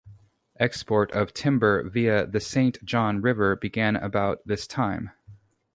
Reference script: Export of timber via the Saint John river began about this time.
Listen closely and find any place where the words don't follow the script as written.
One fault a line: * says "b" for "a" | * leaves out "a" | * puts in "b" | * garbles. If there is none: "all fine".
all fine